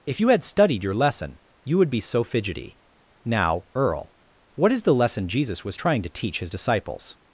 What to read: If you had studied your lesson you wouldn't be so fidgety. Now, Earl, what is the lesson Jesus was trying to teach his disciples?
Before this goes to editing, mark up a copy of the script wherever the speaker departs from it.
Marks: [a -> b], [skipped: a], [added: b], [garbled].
If you had studied your lesson you [wouldn't -> would] be so fidgety. Now, Earl, what is the lesson Jesus was trying to teach his disciples?